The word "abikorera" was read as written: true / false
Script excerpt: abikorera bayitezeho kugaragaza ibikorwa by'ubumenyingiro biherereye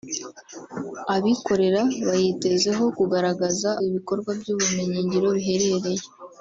true